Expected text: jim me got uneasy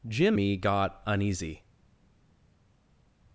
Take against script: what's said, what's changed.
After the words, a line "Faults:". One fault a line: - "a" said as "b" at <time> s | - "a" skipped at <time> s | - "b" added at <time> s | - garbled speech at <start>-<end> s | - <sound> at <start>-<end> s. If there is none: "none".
jim me got uneasy
Faults:
none